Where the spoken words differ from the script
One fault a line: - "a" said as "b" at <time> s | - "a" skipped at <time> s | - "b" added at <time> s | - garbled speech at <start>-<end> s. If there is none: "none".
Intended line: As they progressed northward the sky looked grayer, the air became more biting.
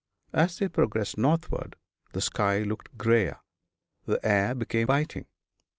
- "more" skipped at 4.9 s